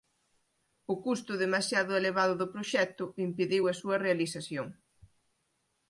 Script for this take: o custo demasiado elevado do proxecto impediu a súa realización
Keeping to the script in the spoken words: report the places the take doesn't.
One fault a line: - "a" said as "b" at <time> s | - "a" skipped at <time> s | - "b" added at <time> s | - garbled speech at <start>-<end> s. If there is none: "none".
none